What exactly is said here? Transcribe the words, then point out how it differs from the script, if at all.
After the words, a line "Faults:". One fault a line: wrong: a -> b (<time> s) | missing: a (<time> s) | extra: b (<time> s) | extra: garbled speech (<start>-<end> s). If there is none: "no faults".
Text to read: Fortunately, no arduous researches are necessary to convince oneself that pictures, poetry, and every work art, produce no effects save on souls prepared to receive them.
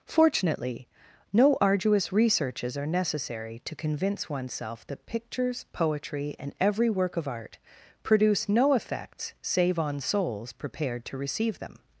Fortunately, no arduous researches are necessary to convince oneself that pictures, poetry, and every work of art, produce no effects save on souls prepared to receive them.
Faults:
extra: of (7.2 s)